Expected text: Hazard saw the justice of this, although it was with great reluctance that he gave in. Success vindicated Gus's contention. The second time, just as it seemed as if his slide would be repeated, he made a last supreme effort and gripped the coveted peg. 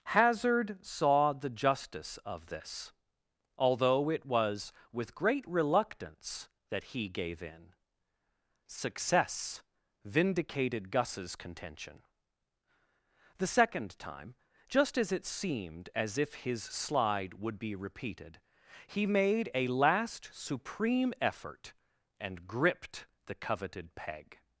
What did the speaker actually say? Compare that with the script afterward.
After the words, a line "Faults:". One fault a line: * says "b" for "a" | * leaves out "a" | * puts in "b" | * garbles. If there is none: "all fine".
Hazard saw the justice of this, although it was with great reluctance that he gave in. Success vindicated Gus's contention. The second time, just as it seemed as if his slide would be repeated, he made a last supreme effort and gripped the coveted peg.
Faults:
all fine